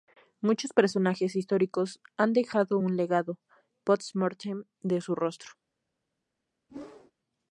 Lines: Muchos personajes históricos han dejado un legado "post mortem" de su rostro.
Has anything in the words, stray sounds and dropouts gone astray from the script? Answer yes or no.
yes